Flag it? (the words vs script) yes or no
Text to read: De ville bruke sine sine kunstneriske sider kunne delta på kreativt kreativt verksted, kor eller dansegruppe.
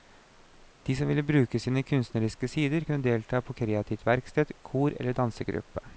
yes